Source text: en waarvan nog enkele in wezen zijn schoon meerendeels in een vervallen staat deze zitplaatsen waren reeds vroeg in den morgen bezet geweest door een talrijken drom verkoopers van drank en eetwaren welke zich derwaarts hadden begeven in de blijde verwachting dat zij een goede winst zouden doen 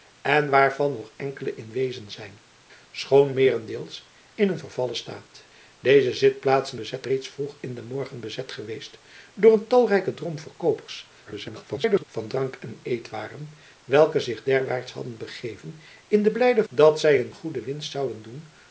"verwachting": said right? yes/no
no